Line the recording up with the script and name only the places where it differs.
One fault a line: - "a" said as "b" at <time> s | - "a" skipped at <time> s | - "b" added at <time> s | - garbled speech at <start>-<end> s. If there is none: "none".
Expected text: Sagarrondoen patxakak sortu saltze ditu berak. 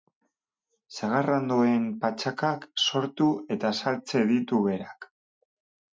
- "eta" added at 3.6 s